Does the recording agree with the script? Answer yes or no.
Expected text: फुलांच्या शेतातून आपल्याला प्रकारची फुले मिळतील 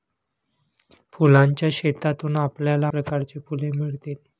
yes